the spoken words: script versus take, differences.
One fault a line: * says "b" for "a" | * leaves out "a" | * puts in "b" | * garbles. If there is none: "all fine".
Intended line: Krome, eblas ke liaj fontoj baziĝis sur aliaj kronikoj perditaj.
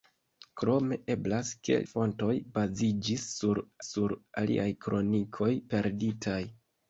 * leaves out "liaj"
* puts in "sur"